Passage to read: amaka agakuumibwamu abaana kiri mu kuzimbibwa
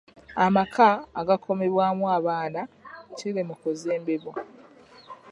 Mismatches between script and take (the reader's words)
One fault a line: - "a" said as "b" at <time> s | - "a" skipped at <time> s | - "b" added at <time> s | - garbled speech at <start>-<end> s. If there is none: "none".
none